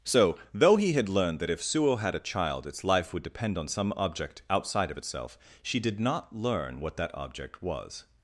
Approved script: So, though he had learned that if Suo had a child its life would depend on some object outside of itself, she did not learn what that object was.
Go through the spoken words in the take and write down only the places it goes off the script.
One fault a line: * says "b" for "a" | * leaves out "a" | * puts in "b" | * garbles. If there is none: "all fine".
all fine